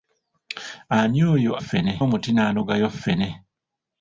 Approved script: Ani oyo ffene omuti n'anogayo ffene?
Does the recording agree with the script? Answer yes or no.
yes